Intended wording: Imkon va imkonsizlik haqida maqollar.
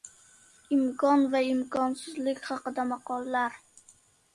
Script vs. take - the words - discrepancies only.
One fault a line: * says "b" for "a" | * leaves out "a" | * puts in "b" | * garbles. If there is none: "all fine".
all fine